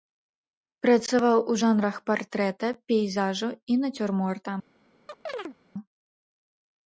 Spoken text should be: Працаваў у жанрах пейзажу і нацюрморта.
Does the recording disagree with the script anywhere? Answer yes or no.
yes